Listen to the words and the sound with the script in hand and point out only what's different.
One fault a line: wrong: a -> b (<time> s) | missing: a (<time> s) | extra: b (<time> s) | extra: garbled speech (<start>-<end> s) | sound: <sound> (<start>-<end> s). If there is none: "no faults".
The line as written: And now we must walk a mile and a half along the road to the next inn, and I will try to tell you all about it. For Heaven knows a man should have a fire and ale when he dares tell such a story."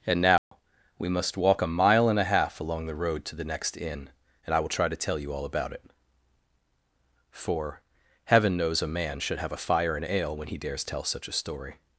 sound: dropout (0.4-0.5 s)